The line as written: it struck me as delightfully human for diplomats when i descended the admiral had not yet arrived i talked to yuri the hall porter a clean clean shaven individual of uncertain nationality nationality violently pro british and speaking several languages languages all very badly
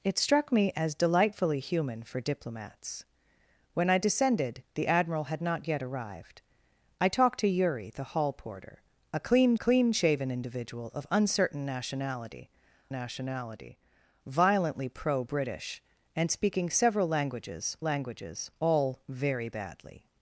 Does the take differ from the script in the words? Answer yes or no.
no